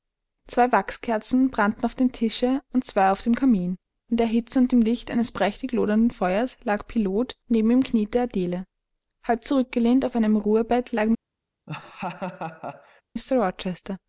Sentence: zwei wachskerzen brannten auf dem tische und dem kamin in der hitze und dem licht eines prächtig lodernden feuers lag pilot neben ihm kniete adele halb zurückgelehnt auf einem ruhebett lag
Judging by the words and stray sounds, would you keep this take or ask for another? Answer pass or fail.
fail